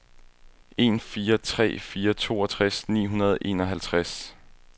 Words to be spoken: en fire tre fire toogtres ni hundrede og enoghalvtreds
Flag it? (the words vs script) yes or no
no